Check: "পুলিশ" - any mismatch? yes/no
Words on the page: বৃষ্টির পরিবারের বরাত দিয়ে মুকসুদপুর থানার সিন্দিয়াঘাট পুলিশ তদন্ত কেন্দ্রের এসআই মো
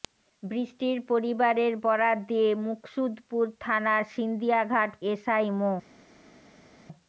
yes